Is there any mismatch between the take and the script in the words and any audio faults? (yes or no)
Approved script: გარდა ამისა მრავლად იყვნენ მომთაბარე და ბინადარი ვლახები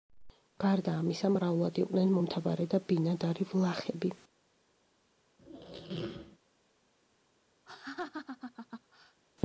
yes